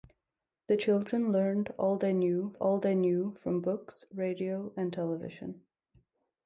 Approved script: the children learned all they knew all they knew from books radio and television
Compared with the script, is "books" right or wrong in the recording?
right